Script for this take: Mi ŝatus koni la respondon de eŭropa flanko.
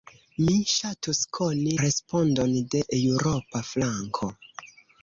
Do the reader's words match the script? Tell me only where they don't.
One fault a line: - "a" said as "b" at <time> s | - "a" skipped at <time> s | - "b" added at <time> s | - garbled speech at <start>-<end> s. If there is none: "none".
- "la" skipped at 1.8 s